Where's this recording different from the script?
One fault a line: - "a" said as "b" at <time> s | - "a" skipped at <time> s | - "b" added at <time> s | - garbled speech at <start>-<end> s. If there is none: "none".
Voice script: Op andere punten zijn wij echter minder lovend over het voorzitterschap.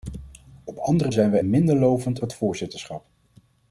- "punten" skipped at 1.1 s
- "echter" skipped at 1.4 s
- "over" skipped at 2.2 s